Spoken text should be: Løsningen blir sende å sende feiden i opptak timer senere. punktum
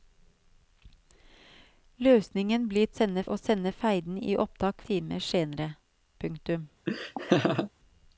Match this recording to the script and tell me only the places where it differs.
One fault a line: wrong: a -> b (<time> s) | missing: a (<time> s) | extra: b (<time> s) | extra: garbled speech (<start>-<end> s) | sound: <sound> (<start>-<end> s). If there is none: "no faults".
sound: laugh (6.9-7.7 s)